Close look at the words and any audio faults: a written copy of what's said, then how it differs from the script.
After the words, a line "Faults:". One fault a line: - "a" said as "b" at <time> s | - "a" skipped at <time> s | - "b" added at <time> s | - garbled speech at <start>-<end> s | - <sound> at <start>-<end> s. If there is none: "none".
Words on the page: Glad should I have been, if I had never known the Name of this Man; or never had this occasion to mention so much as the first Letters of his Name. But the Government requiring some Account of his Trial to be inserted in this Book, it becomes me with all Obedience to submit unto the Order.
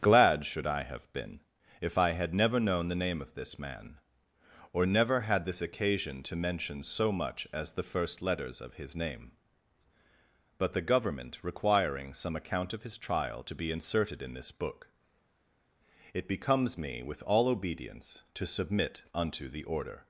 Glad should I have been, if I had never known the Name of this Man; or never had this occasion to mention so much as the first Letters of his Name. But the Government requiring some Account of his Trial to be inserted in this Book, it becomes me with all Obedience to submit unto the Order.
Faults:
none